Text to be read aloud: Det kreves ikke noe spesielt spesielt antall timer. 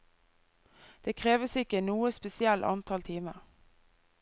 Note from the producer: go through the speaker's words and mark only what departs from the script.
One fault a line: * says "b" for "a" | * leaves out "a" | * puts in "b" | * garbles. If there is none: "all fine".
* leaves out "spesielt"